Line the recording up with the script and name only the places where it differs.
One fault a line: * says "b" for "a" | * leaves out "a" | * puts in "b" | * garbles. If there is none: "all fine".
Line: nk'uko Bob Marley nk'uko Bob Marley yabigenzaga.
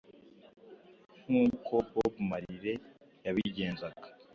* leaves out "nk'uko Bob Marley"